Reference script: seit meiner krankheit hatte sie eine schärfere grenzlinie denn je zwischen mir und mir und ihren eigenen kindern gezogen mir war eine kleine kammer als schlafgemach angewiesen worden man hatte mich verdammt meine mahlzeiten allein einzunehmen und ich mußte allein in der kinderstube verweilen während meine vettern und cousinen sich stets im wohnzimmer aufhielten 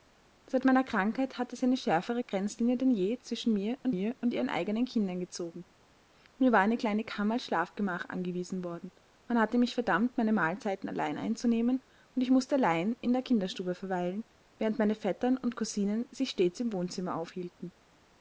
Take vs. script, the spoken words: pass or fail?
pass